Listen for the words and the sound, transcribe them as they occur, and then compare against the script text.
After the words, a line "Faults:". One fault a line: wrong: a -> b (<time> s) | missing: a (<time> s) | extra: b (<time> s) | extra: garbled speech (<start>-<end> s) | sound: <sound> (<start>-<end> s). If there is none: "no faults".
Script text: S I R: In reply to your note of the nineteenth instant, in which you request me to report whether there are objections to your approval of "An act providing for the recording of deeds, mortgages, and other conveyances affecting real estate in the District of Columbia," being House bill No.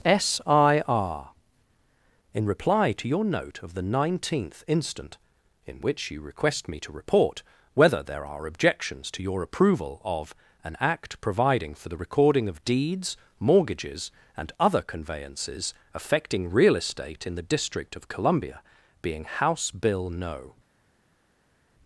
S I R: In reply to your note of the nineteenth instant, in which you request me to report whether there are objections to your approval of "An act providing for the recording of deeds, mortgages, and other conveyances affecting real estate in the District of Columbia," being House bill No.
Faults:
no faults